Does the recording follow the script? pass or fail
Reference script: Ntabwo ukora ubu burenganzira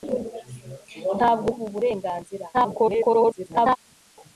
fail